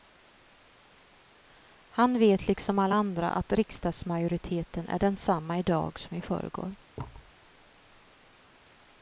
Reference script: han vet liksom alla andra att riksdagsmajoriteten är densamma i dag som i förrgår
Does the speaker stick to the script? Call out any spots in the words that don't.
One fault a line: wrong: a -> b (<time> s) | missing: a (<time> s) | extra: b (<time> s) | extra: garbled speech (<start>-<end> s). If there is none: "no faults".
no faults